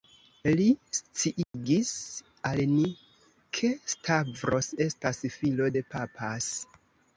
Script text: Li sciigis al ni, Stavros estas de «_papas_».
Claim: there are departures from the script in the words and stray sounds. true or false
true